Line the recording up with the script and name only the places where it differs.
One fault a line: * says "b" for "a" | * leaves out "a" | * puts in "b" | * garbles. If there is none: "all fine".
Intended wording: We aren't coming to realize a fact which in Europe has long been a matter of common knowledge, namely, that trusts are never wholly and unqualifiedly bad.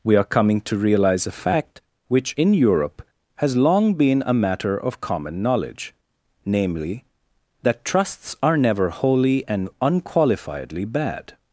* says "are" for "aren't"